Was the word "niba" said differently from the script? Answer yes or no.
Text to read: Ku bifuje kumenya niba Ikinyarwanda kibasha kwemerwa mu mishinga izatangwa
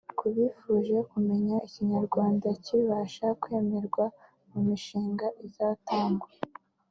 yes